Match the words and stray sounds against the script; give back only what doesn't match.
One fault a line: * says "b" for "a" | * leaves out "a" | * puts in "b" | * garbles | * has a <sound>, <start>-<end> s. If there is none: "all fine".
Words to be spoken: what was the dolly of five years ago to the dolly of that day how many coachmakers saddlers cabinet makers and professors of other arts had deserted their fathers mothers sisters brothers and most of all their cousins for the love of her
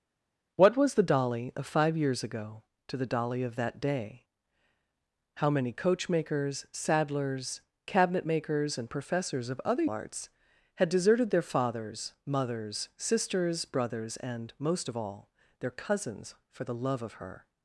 all fine